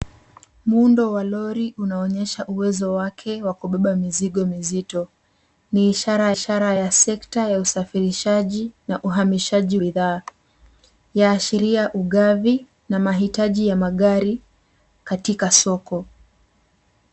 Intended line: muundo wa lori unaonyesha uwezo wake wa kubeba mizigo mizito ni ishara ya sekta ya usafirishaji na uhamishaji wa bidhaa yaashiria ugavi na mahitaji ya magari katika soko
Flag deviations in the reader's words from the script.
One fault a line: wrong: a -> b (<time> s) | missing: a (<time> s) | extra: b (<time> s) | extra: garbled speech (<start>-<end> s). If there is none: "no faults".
extra: ishara (6.3 s)
missing: wa (9.8 s)